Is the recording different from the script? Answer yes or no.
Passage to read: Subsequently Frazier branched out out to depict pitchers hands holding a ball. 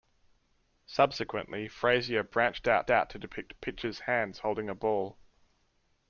no